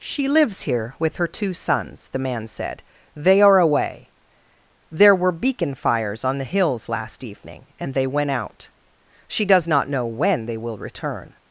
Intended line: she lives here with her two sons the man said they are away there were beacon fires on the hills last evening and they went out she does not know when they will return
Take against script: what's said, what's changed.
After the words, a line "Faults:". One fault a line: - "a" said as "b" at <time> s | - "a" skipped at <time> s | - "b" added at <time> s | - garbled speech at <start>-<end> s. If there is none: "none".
she lives here with her two sons the man said they are away there were beacon fires on the hills last evening and they went out she does not know when they will return
Faults:
none